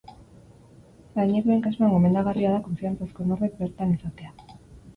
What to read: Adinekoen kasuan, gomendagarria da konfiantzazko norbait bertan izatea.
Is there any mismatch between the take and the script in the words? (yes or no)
no